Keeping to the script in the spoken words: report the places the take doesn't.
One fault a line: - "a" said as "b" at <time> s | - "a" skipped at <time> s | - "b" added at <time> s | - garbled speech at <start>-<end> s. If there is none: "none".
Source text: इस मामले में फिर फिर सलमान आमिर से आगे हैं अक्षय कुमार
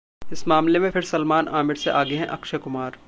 - "फिर" skipped at 1.0 s